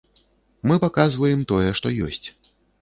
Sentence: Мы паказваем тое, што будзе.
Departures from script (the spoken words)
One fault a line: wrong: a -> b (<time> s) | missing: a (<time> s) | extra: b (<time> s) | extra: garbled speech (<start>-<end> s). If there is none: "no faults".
wrong: будзе -> ёсць (2.1 s)